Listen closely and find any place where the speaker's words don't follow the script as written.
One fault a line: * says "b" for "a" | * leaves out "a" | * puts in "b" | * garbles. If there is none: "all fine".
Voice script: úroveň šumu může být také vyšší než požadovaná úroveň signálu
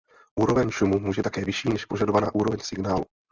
* leaves out "být"